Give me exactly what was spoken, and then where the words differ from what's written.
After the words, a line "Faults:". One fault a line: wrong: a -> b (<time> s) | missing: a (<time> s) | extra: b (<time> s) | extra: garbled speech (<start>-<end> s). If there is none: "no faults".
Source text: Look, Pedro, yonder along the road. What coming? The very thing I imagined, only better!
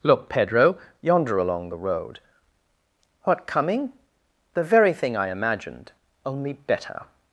Look, Pedro, yonder along the road. What coming? The very thing I imagined, only better!
Faults:
no faults